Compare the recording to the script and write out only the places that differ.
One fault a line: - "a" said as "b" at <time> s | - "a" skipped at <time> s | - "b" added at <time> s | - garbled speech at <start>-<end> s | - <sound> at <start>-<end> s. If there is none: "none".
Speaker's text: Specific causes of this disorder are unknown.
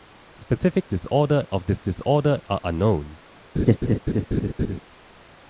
- "causes" said as "disorder" at 0.9 s
- laugh at 3.6-4.8 s